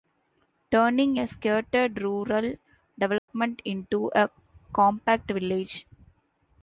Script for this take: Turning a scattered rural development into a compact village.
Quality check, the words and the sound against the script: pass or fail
fail